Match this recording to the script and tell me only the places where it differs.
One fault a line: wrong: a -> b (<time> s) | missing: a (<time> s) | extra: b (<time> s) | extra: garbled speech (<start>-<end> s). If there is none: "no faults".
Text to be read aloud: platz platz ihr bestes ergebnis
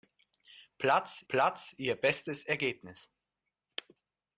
no faults